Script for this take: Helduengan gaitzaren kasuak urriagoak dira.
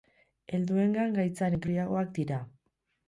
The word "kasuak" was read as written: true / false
false